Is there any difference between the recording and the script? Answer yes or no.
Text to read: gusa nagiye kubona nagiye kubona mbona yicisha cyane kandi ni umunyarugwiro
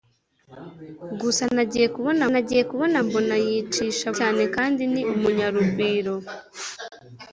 no